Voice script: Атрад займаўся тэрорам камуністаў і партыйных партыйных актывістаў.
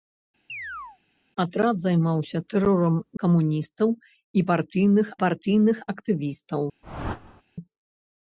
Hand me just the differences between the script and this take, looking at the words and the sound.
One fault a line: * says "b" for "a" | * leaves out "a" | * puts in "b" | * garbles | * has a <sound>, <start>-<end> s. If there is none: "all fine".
* has a chirp, 0.5-1.0 s
* has a whoosh, 6.8-7.4 s